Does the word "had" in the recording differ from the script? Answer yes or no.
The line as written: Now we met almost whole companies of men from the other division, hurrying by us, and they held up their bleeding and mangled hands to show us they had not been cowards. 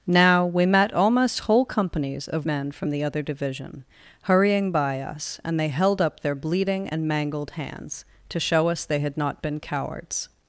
no